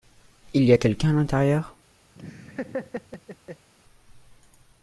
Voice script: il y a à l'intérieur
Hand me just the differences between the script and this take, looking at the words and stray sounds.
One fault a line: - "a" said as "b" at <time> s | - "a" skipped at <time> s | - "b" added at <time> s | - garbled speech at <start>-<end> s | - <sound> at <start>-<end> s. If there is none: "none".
- "quelqu'un" added at 0.8 s
- laugh at 2.1-3.7 s